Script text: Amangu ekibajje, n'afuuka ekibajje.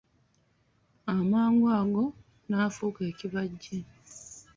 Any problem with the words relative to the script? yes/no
yes